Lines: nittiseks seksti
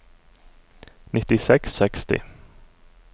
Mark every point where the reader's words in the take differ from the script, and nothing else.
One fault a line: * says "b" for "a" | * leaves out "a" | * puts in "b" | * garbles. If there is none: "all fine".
all fine